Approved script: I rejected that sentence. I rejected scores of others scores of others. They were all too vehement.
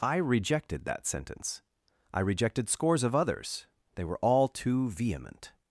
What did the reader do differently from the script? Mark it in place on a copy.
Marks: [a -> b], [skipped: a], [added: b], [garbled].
I rejected that sentence. I rejected scores of others [skipped: scores of others.] They were all too vehement.